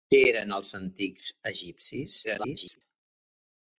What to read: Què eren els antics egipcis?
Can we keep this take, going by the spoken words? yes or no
no